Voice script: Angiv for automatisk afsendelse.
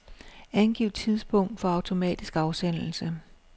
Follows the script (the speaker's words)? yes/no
no